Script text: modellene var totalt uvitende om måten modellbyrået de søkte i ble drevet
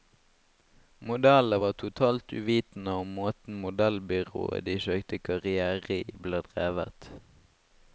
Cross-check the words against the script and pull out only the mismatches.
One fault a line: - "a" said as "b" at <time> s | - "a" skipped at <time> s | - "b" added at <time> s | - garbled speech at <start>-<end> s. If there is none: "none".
- "karrière" added at 5.3 s